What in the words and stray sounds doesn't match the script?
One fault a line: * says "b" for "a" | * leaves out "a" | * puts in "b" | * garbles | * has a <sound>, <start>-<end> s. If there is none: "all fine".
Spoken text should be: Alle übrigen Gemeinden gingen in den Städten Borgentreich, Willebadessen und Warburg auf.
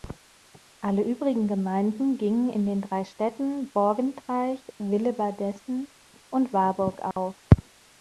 * puts in "drei"
* has a dropout, 7.1-7.2 s